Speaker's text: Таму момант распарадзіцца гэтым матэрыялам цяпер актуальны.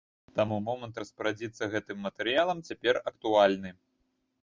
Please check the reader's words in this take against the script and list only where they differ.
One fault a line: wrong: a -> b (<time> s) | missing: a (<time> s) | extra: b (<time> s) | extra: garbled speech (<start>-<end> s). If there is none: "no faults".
no faults